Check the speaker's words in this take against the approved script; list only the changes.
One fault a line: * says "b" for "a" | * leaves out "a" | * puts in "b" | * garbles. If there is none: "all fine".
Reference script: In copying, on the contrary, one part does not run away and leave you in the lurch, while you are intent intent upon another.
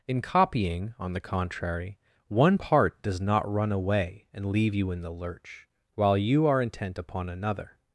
* leaves out "intent"